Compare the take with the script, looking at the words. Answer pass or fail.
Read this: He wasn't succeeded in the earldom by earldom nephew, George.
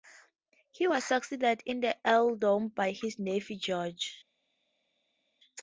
fail